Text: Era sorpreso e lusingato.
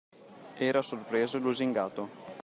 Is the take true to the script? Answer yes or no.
yes